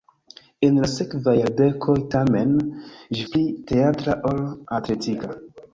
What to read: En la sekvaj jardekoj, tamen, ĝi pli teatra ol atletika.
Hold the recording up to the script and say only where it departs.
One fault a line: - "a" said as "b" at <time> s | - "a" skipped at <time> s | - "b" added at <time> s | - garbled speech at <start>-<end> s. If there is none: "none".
none